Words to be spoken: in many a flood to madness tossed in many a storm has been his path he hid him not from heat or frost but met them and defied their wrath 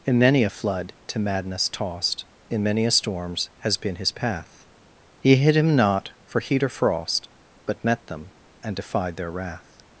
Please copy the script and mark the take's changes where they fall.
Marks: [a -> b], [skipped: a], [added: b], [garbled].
in many a flood to madness tossed in many a [storm -> storms] has been his path he hid him not [from -> for] heat or frost but met them and defied their wrath